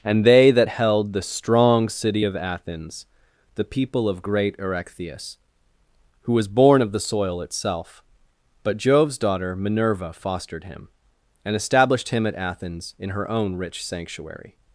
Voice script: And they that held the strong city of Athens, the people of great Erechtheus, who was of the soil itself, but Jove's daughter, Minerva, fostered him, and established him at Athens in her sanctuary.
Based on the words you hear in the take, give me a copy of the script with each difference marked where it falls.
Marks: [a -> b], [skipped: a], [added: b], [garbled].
And they that held the strong city of Athens, the people of great Erechtheus, who was [added: born] of the soil itself, but Jove's daughter, Minerva, fostered him, and established him at Athens in her [added: own rich] sanctuary.